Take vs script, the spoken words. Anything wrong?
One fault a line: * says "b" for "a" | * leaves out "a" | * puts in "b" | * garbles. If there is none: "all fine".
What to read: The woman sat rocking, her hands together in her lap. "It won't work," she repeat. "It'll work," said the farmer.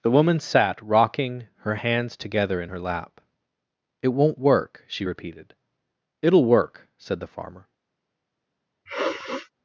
* says "repeated" for "repeat"